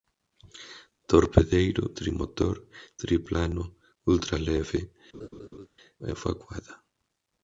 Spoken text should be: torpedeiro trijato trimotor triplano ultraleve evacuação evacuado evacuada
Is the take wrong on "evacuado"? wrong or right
wrong